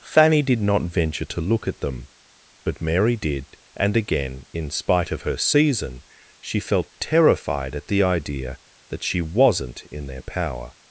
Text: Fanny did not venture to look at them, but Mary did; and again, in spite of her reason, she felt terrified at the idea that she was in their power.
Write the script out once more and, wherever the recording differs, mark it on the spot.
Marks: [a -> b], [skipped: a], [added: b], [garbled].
Fanny did not venture to look at them, but Mary did; and again, in spite of her [reason, -> season] she felt terrified at the idea that she [was -> wasn't] in their power.